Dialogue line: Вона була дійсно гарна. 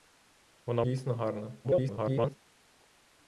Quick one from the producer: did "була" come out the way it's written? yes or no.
no